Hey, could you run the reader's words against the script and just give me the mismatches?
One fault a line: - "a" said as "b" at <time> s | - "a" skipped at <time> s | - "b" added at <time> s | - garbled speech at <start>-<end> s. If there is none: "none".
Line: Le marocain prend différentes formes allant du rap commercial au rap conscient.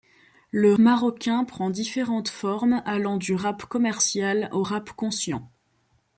none